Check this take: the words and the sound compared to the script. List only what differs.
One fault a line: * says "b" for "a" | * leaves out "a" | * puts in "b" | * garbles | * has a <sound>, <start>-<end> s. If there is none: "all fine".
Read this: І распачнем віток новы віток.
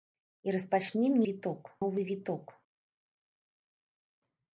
all fine